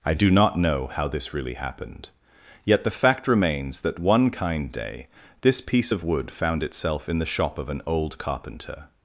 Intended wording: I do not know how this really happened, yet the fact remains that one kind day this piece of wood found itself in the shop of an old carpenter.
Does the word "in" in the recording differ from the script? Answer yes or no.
no